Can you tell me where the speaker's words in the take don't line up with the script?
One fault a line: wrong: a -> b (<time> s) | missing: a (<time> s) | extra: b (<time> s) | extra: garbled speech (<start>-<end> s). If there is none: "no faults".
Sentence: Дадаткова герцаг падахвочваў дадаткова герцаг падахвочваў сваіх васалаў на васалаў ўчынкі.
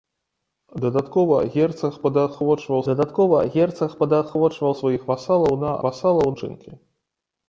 no faults